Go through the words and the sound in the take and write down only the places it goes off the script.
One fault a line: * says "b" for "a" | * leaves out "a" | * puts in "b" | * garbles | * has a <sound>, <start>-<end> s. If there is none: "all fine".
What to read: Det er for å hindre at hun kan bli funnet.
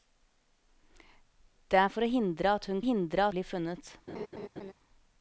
* says "hindre" for "kan"
* has a laugh, 4.1-4.7 s